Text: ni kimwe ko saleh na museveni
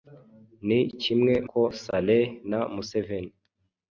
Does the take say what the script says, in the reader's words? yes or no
yes